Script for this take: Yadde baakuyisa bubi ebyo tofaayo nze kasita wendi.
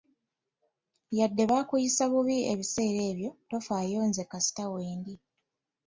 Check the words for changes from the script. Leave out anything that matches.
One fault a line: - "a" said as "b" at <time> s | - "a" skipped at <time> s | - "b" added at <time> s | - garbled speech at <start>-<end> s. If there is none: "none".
- "ebiseera" added at 2.5 s